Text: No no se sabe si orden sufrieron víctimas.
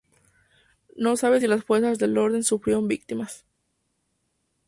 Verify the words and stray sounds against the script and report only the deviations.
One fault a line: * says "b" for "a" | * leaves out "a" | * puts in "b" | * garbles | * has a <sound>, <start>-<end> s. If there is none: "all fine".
* leaves out "no"
* puts in "las fuerzas del"